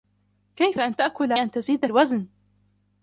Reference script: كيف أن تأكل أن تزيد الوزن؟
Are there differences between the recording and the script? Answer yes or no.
no